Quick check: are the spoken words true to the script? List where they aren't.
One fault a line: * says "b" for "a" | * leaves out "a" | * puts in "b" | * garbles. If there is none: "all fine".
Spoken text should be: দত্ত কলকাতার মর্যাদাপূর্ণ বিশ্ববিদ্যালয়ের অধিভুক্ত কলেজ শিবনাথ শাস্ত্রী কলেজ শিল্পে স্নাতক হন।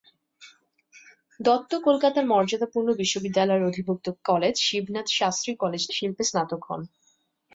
all fine